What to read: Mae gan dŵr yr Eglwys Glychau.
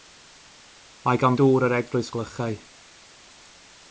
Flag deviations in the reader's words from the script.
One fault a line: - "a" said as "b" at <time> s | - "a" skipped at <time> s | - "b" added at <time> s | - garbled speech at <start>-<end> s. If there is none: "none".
none